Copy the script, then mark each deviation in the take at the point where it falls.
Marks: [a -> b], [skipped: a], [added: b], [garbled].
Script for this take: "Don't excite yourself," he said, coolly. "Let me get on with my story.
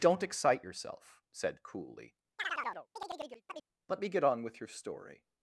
"Don't excite yourself," [skipped: he] said, coolly. "Let me get on with [my -> your] story.